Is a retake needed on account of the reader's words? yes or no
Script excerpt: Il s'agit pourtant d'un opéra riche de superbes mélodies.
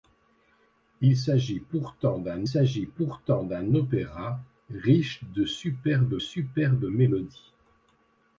yes